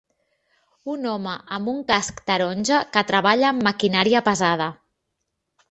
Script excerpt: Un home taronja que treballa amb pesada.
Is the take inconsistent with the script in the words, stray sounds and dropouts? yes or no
yes